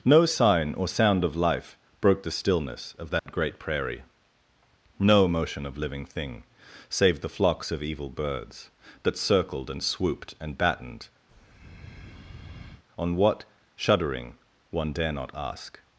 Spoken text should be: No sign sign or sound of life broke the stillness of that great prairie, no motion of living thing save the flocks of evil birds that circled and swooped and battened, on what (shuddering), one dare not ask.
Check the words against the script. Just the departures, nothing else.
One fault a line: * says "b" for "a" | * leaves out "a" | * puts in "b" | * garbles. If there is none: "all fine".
* leaves out "sign"